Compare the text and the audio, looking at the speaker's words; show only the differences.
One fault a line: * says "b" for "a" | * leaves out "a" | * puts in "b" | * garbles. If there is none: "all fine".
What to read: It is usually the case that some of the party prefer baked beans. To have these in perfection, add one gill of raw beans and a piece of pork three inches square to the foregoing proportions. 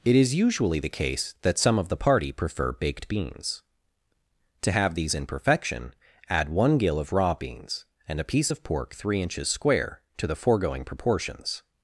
all fine